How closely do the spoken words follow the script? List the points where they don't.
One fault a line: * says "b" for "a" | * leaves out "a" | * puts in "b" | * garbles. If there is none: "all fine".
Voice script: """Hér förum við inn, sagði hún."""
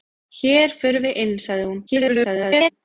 * garbles